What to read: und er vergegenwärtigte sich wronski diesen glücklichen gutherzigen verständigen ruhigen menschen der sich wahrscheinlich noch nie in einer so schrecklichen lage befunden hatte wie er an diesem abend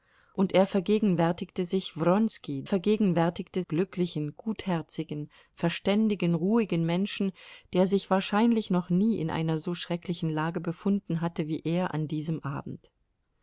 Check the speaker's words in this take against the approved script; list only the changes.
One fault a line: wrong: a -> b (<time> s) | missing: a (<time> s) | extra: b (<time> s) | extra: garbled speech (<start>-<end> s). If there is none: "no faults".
wrong: diesen -> vergegenwärtigte (2.6 s)